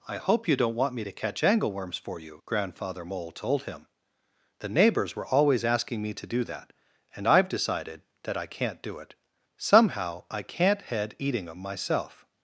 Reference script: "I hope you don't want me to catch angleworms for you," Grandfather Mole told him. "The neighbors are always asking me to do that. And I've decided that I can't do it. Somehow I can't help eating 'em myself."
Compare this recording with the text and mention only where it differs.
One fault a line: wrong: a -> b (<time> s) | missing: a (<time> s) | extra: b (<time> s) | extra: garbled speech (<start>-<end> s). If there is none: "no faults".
wrong: are -> were (5.2 s)
wrong: help -> head (10.8 s)